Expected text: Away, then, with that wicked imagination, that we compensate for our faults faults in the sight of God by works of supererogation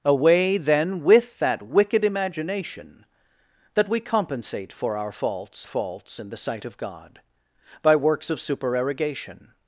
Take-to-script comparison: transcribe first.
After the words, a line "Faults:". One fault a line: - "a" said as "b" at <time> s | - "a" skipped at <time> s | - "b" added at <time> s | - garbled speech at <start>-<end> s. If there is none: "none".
Away, then, with that wicked imagination, that we compensate for our faults faults in the sight of God by works of supererogation
Faults:
none